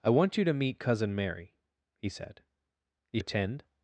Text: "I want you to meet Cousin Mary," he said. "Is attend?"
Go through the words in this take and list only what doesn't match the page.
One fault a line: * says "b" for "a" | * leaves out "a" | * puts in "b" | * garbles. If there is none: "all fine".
all fine